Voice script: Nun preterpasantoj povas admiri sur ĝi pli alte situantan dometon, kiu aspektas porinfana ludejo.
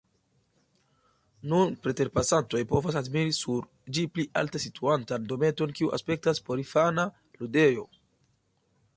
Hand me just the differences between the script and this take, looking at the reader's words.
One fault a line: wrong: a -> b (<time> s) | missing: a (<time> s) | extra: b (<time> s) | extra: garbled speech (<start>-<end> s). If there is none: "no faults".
no faults